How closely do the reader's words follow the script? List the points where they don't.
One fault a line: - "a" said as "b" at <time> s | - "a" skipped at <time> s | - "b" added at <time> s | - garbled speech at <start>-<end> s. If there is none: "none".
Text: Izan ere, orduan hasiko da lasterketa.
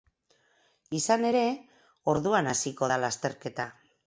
none